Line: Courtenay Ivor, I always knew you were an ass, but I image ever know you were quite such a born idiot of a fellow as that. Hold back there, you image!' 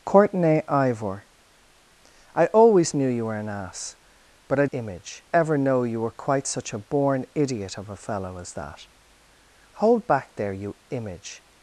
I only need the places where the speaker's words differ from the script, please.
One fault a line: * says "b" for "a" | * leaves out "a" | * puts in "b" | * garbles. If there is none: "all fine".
all fine